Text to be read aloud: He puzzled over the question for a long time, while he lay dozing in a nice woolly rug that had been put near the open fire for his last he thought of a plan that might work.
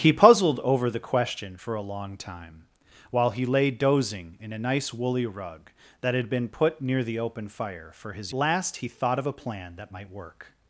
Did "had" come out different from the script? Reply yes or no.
no